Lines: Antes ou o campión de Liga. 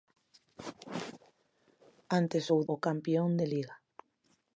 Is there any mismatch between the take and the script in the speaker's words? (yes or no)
no